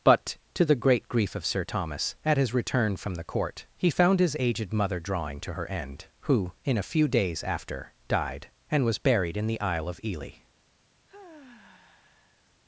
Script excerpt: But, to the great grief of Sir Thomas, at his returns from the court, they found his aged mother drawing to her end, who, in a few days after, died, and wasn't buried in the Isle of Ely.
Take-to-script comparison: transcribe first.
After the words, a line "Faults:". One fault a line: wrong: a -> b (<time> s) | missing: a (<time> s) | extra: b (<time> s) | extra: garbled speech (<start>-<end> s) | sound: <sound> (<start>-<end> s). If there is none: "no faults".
But, to the great grief of Sir Thomas, at his return from the court, he found his aged mother drawing to her end, who, in a few days after, died, and was buried in the Isle of Ely.
Faults:
wrong: returns -> return (2.5 s)
wrong: they -> he (3.8 s)
wrong: wasn't -> was (8.8 s)
sound: sigh (11.1-12.6 s)